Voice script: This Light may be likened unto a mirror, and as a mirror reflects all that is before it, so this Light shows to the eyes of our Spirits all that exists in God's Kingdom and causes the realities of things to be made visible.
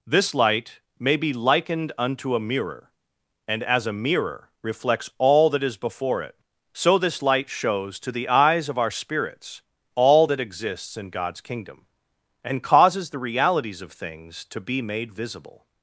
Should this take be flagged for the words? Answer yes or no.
no